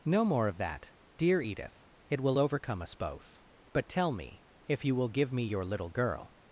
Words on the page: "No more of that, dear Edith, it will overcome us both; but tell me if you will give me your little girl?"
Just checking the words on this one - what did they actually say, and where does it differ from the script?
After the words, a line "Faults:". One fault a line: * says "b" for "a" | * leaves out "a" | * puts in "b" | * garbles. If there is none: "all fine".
"No more of that, dear Edith, it will overcome us both; but tell me if you will give me your little girl?"
Faults:
all fine